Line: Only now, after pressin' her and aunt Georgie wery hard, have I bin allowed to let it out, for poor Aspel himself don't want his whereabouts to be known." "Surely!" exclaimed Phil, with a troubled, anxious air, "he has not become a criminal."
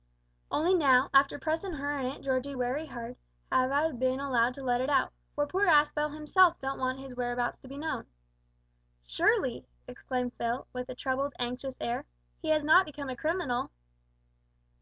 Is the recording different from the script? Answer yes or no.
no